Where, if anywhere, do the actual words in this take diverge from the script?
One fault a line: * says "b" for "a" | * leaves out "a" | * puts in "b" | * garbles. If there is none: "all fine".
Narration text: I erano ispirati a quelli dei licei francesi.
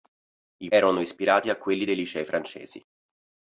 all fine